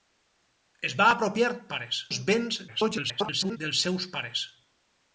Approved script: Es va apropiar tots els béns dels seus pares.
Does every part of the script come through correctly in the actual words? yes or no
no